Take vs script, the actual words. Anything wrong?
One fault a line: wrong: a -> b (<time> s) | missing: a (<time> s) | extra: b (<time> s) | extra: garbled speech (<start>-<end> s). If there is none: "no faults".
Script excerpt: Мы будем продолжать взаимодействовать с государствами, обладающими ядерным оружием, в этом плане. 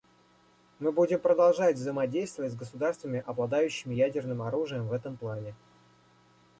no faults